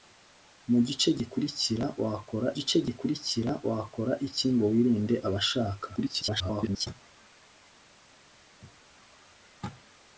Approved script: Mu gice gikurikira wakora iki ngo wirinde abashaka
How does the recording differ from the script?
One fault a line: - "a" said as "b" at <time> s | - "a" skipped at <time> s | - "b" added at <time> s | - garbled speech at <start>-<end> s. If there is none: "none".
- "gice gikurikira wakora" added at 2.6 s
- garbled speech at 6.0-6.9 s